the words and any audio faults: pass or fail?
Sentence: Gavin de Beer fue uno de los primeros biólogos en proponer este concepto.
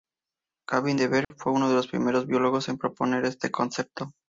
fail